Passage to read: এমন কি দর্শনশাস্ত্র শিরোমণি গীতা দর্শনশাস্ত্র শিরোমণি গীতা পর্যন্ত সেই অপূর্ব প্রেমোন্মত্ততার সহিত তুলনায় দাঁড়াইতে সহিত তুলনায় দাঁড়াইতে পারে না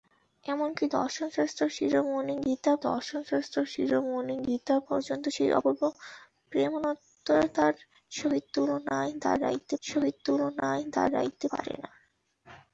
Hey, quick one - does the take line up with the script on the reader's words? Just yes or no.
yes